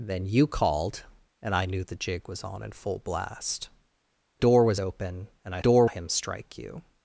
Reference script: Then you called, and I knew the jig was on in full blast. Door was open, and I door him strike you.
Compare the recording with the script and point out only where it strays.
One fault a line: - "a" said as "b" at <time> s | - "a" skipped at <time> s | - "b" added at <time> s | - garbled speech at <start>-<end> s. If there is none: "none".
none